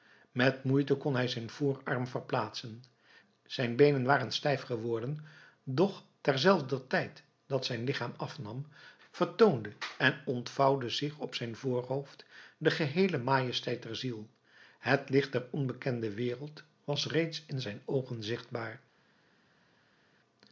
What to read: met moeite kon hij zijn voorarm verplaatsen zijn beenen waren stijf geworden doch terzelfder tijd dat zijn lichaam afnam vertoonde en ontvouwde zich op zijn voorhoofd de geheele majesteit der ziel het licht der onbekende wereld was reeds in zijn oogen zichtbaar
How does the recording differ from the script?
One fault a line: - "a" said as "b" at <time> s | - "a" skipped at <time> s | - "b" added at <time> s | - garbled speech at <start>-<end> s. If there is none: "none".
none